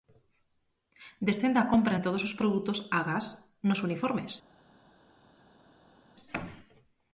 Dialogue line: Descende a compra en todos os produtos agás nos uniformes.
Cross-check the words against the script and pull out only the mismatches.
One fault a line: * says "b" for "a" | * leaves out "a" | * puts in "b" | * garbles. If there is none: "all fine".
all fine